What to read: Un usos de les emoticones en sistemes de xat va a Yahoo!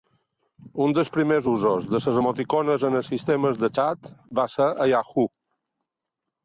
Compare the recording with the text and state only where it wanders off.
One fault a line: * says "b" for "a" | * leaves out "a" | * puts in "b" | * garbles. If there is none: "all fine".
* puts in "dels primers"
* puts in "els"
* puts in "ser"